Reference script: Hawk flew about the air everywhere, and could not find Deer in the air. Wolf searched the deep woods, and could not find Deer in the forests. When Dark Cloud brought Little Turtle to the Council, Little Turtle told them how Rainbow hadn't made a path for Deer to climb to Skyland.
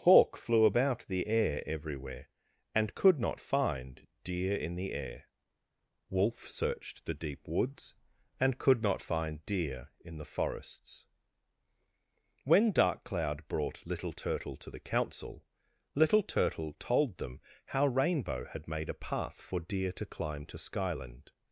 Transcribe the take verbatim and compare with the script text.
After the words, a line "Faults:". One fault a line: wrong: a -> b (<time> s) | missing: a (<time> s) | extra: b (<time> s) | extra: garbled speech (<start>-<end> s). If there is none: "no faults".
Hawk flew about the air everywhere, and could not find Deer in the air. Wolf searched the deep woods, and could not find Deer in the forests. When Dark Cloud brought Little Turtle to the Council, Little Turtle told them how Rainbow had made a path for Deer to climb to Skyland.
Faults:
wrong: hadn't -> had (18.4 s)